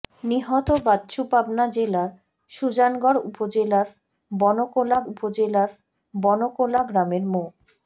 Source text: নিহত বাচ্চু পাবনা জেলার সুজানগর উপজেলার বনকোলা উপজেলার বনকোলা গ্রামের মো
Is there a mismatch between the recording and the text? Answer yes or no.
no